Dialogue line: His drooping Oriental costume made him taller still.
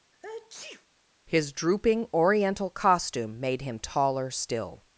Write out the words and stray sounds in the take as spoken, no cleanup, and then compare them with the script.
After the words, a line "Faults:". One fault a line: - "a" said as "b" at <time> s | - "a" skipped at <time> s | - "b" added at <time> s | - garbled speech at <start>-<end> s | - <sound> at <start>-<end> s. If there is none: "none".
His drooping Oriental costume made him taller still.
Faults:
- sneeze at 0.1-0.9 s